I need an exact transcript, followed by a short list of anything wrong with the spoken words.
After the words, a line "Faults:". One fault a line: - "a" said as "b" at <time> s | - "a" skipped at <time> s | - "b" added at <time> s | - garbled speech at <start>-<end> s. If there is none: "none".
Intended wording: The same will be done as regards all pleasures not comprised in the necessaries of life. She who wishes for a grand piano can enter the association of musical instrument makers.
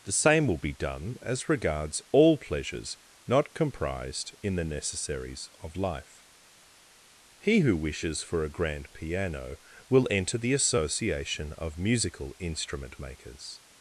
The same will be done as regards all pleasures not comprised in the necessaries of life. He who wishes for a grand piano will enter the association of musical instrument makers.
Faults:
- "She" said as "He" at 7.4 s
- "can" said as "will" at 9.9 s